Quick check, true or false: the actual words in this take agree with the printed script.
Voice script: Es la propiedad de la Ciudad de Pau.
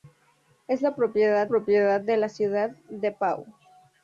false